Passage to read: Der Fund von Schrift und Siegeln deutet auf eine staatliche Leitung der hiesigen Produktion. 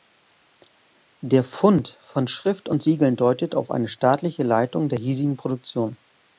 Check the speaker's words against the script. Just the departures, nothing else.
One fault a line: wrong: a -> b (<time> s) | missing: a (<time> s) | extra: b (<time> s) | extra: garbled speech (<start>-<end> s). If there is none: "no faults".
no faults